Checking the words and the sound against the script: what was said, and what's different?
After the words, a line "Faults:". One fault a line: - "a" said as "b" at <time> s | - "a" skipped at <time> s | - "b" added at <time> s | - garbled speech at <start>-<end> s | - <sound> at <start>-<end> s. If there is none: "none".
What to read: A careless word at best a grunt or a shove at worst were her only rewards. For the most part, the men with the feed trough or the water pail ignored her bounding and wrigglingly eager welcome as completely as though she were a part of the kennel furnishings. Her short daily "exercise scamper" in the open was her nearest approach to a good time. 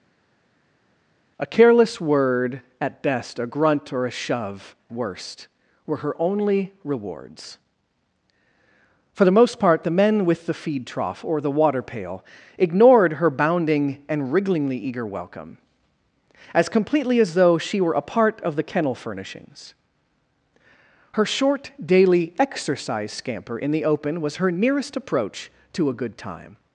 A careless word at best a grunt or a shove worst were her only rewards. For the most part, the men with the feed trough or the water pail ignored her bounding and wrigglingly eager welcome as completely as though she were a part of the kennel furnishings. Her short daily "exercise scamper" in the open was her nearest approach to a good time.
Faults:
- "at" skipped at 4.7 s